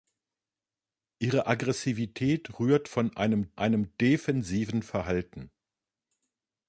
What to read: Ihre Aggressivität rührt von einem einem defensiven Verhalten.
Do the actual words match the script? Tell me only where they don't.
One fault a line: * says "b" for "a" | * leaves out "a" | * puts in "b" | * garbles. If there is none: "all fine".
all fine